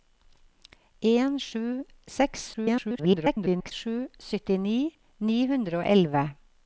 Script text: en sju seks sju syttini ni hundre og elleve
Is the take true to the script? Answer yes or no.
no